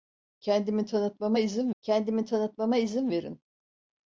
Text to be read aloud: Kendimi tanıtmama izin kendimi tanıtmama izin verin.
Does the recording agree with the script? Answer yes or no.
yes